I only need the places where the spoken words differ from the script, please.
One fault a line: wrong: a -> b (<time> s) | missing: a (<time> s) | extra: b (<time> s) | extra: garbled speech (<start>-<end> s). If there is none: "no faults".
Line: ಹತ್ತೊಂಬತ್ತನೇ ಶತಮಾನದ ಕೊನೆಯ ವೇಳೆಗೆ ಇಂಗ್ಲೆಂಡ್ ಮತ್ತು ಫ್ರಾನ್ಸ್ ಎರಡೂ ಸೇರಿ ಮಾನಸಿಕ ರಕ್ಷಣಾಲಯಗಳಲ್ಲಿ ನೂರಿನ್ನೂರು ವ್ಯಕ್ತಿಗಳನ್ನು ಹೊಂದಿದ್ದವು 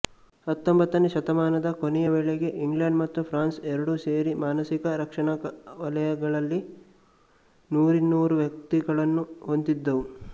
no faults